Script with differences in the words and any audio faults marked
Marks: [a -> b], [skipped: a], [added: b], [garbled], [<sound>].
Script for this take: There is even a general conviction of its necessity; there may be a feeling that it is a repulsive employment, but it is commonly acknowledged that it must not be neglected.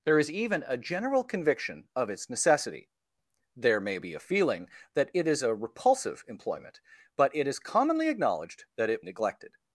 There is even a general conviction of its necessity; there may be a feeling that it is a repulsive employment, but it is commonly acknowledged that it [skipped: must not be] neglected.